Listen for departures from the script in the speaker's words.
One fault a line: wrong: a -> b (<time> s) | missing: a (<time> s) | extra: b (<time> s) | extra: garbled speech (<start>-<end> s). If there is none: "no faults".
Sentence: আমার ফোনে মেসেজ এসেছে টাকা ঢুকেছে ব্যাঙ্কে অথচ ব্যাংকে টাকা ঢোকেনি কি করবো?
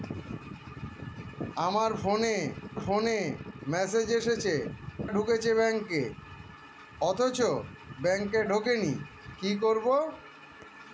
extra: ফোনে (2.8 s)
missing: টাকা (4.5 s)
missing: টাকা (8.4 s)